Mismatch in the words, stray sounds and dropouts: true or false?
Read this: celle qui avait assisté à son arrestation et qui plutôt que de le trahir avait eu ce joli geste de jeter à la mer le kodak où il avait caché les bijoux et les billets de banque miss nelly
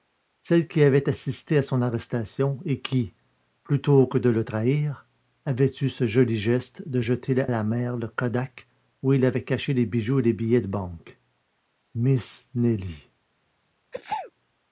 true